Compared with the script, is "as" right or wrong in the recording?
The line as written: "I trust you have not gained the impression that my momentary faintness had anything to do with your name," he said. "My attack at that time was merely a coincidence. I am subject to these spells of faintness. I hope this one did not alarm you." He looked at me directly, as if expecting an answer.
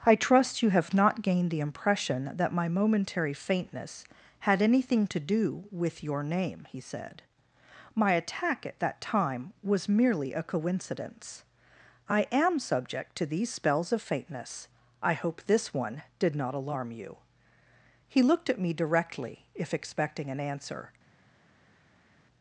wrong